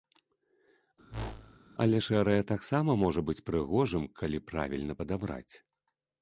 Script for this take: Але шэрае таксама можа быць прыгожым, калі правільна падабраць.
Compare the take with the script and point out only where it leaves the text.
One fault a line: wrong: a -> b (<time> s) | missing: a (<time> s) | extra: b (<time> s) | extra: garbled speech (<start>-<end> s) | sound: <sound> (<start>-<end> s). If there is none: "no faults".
sound: whoosh (1.1-1.6 s)